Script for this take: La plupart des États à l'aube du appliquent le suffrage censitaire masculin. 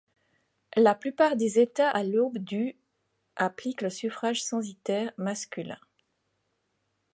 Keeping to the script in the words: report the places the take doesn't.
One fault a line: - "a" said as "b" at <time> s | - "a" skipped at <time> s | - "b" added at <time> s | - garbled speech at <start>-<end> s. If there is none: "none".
none